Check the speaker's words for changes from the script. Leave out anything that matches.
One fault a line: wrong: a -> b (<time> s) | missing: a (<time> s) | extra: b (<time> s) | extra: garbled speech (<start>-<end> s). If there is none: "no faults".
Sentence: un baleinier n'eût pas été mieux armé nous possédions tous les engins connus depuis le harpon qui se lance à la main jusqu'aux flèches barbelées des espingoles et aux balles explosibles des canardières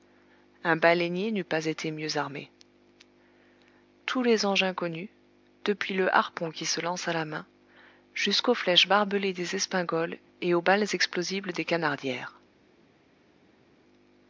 missing: nous possédions (2.5 s)